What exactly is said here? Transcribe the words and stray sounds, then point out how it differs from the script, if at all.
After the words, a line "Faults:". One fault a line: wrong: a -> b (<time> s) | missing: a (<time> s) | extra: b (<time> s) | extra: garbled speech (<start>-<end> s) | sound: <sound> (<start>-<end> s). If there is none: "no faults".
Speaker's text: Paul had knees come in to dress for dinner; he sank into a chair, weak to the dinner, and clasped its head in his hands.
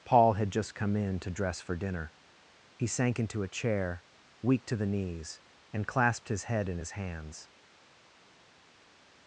Paul had just come in to dress for dinner; he sank into a chair, weak to the knees, and clasped his head in his hands.
Faults:
wrong: knees -> just (0.5 s)
wrong: dinner -> knees (4.9 s)
wrong: its -> his (6.3 s)